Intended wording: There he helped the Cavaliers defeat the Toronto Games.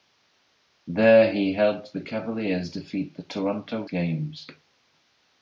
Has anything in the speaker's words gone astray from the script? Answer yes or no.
no